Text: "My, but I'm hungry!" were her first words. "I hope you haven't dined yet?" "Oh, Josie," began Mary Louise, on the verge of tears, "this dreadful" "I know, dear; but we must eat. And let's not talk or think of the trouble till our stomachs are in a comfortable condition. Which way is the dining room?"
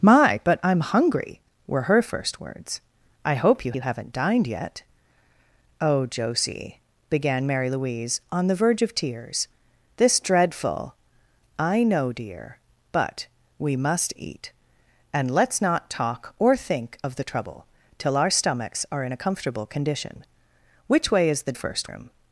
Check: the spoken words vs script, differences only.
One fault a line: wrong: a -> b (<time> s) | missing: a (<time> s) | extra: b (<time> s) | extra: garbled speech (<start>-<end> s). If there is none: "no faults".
extra: you (3.7 s)
wrong: dining -> first (21.5 s)